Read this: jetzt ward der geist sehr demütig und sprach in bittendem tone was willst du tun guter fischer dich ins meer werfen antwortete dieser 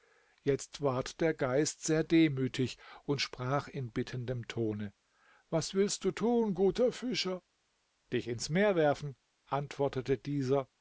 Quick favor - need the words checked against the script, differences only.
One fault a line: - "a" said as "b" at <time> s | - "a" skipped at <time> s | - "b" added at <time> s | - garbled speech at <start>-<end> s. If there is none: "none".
none